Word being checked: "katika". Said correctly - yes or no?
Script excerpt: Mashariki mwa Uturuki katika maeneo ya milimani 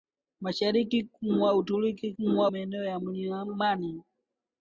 no